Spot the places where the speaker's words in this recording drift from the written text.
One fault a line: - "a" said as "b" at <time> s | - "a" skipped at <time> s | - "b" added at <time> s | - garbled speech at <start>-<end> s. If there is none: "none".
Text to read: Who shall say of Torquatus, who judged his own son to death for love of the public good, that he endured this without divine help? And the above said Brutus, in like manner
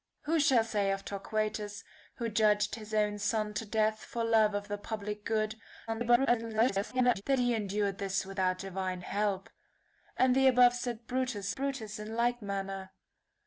- garbled speech at 5.9-7.2 s
- "Brutus" added at 11.5 s